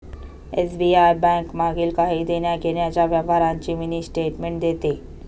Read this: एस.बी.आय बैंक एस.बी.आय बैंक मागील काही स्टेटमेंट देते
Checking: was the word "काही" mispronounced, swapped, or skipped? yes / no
yes